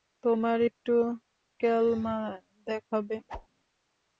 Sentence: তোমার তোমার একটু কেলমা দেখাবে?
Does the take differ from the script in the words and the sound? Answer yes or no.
yes